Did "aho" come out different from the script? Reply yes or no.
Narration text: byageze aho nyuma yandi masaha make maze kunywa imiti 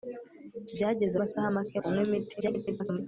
yes